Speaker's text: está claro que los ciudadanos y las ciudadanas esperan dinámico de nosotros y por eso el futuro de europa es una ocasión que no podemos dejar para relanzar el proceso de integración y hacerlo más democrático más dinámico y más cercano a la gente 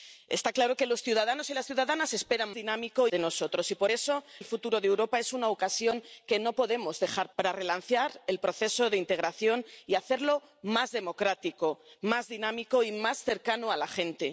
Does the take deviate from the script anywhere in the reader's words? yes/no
no